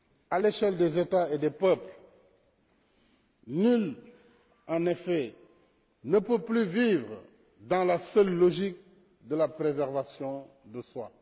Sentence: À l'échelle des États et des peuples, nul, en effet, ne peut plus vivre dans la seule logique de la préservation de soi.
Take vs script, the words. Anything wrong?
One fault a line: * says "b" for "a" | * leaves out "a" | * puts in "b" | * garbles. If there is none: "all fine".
all fine